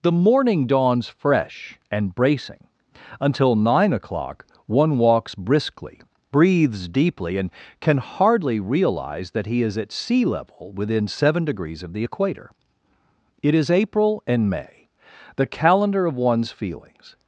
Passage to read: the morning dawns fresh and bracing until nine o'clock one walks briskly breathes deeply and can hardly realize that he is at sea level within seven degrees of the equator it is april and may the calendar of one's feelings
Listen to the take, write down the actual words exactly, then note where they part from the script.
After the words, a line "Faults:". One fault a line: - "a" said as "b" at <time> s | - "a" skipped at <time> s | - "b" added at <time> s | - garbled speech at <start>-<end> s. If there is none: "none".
the morning dawns fresh and bracing until nine o'clock one walks briskly breathes deeply and can hardly realize that he is at sea level within seven degrees of the equator it is april and may the calendar of one's feelings
Faults:
none